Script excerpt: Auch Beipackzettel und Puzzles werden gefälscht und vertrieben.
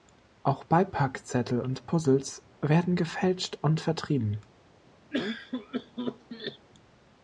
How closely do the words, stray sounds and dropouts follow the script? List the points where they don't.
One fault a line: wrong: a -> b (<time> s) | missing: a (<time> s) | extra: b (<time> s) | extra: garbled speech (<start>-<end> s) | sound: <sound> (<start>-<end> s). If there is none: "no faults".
sound: cough (5.1-6.7 s)